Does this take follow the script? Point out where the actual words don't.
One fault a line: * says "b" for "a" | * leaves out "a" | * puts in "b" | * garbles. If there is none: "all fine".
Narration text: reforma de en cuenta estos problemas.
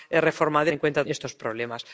all fine